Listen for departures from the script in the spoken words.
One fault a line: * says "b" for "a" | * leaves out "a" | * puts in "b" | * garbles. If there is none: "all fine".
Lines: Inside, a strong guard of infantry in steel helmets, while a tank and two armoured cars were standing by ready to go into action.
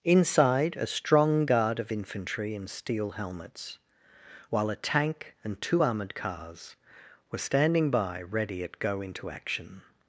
* says "at" for "to"